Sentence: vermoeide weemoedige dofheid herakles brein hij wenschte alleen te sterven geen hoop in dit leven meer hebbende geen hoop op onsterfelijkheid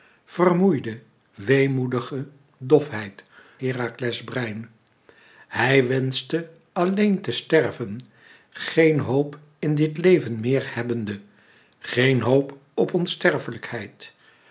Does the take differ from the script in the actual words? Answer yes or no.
no